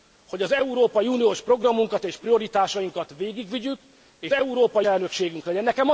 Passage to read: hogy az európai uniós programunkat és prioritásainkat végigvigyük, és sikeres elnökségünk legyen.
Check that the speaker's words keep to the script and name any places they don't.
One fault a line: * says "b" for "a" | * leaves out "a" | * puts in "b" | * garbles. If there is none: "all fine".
* says "európai" for "sikeres"